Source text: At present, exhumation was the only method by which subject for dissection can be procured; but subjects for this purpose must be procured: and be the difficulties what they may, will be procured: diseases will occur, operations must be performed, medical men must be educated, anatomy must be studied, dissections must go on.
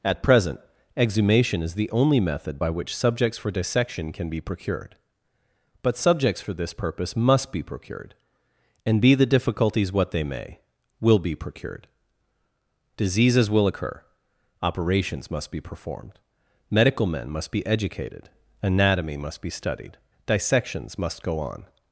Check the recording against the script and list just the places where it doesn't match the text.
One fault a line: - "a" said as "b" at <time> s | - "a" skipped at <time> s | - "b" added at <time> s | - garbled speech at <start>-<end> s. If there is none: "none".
- "was" said as "is" at 1.6 s
- "subject" said as "subjects" at 2.9 s